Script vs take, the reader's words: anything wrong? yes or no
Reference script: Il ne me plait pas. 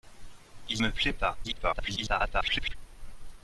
yes